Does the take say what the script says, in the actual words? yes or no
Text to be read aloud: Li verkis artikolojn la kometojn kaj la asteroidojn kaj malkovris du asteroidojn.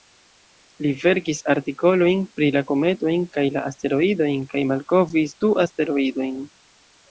no